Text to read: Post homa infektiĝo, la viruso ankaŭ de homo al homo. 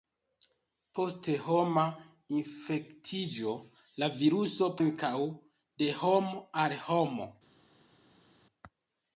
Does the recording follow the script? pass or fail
pass